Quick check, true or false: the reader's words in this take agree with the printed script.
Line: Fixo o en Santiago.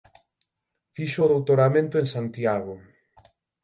false